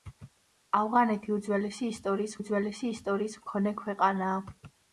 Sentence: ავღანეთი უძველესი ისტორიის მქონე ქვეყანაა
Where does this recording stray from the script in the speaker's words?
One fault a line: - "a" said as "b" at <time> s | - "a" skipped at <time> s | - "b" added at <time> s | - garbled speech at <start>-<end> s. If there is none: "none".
- "უძველესი ისტორიის" added at 2.4 s